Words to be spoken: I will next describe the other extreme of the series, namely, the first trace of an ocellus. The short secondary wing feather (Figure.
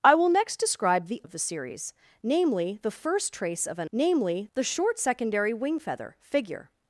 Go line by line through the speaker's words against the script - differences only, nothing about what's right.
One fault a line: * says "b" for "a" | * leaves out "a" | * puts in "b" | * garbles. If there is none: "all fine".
* leaves out "other extreme"
* says "namely" for "ocellus"